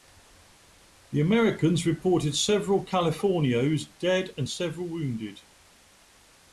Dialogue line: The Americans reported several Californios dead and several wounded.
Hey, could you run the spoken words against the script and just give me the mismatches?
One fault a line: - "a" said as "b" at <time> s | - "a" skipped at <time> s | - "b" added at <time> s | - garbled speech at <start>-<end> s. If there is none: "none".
none